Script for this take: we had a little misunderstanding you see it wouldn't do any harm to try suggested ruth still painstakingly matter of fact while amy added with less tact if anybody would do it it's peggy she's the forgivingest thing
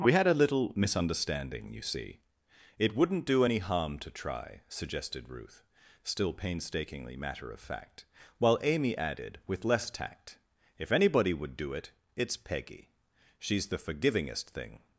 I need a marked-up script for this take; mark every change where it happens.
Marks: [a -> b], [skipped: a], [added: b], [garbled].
we had a little misunderstanding you see it wouldn't do any harm to try suggested ruth still painstakingly matter of fact while amy added with less tact if anybody would do it it's peggy she's the forgivingest thing